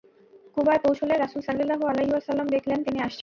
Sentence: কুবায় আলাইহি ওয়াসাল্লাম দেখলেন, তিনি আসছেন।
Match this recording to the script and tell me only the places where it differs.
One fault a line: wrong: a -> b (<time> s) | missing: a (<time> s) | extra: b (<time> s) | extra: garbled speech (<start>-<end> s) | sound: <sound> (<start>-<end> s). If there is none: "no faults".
extra: পৌঁছলে রাসূল সাল্লাল্লাহু (0.8 s)